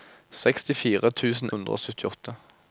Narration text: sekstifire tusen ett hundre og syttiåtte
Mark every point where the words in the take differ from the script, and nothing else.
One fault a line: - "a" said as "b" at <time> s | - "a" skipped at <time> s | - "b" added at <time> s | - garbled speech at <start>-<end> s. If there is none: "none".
- "ett" skipped at 1.5 s